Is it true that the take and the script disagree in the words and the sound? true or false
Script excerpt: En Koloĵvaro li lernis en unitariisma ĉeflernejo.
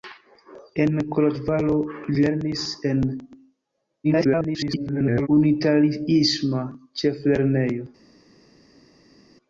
true